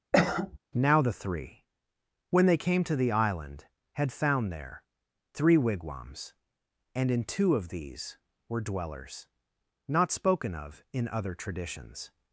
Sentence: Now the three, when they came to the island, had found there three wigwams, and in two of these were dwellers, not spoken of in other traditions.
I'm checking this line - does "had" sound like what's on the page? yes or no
yes